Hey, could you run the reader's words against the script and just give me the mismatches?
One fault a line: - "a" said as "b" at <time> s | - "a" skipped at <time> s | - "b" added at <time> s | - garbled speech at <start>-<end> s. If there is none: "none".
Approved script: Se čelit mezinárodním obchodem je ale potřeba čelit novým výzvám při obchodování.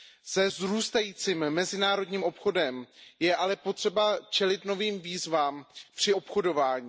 - "čelit" said as "vzrůstajícím" at 0.5 s